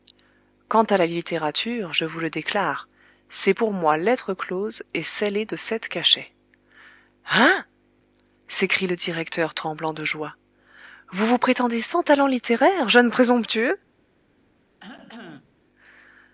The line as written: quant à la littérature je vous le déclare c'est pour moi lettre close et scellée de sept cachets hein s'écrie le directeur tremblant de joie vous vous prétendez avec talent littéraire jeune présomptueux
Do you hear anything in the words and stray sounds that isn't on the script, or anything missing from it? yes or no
yes